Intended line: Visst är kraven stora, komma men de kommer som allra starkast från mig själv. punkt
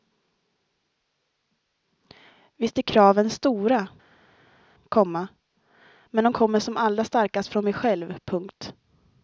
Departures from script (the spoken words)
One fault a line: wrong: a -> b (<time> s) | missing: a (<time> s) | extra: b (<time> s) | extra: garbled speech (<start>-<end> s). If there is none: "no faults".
no faults